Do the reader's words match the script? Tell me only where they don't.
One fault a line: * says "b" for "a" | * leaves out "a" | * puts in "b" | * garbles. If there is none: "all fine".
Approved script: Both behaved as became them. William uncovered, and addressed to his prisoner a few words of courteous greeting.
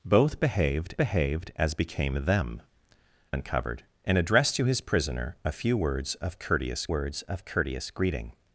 * puts in "behaved"
* leaves out "William"
* puts in "words of courteous"